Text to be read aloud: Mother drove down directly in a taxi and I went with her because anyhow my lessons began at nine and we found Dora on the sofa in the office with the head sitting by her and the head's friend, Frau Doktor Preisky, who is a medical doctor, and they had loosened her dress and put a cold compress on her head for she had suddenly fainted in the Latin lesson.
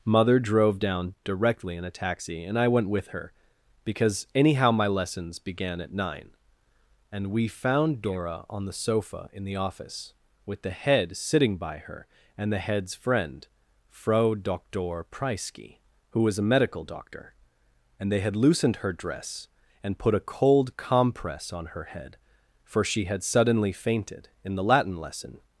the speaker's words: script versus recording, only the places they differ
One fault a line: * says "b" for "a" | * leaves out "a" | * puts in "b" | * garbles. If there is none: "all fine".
* says "was" for "is"